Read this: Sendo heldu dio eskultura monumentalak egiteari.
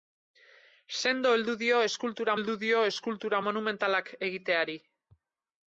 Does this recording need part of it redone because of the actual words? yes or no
yes